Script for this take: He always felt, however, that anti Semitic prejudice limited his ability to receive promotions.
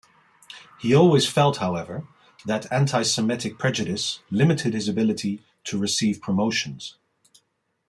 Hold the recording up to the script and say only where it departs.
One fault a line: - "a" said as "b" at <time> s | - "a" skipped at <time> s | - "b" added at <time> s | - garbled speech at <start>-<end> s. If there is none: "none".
none